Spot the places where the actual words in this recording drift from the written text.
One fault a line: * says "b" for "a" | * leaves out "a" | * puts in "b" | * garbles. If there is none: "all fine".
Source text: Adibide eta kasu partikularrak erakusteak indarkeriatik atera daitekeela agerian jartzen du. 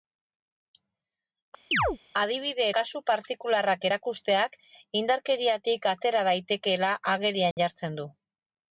* leaves out "eta"